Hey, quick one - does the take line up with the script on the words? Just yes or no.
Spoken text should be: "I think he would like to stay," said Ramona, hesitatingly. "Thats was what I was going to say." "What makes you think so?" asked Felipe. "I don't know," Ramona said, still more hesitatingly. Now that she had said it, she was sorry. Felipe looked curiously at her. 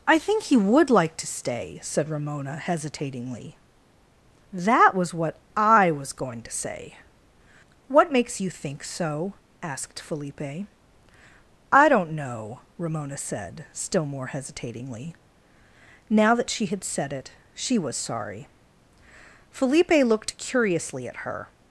no